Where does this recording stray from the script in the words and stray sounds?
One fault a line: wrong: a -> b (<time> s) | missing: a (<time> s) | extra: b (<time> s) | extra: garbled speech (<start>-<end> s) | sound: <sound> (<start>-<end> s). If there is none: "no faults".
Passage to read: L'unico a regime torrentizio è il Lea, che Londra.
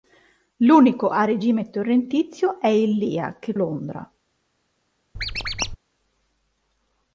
sound: squeak (5.2-5.8 s)